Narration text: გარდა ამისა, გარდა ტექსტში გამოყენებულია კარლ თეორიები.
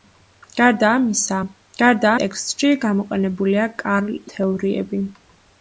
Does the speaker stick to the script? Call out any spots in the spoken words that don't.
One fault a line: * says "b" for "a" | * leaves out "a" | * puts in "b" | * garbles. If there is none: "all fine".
all fine